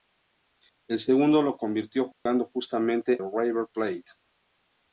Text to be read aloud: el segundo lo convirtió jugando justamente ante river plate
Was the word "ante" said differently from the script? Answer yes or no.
yes